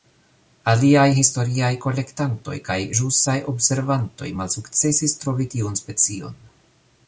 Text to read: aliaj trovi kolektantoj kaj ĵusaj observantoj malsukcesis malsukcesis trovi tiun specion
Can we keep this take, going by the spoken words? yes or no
no